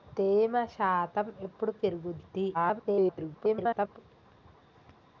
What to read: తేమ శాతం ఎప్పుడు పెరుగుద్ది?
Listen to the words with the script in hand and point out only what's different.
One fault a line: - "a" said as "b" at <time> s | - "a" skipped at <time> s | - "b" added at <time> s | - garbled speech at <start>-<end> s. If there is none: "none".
- garbled speech at 2.5-4.0 s